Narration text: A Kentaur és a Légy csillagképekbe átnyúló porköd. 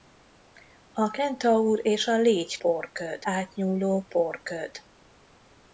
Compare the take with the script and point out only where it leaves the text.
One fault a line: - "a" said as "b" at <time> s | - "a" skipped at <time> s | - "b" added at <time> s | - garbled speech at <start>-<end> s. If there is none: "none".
- "csillagképekbe" said as "porköd" at 2.6 s